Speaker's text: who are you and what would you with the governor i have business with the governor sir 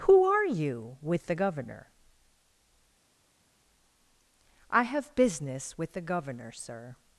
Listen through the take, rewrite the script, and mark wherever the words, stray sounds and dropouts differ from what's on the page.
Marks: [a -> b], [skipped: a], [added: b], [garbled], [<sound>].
who are you [skipped: and what would you] with the governor i have business with the governor sir